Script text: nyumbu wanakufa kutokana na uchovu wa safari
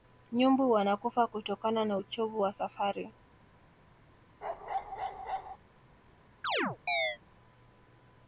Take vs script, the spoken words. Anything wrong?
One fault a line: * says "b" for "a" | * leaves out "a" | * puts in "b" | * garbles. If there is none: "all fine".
all fine